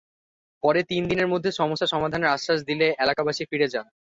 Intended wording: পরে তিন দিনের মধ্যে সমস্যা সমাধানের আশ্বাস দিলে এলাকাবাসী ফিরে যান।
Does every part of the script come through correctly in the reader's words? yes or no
yes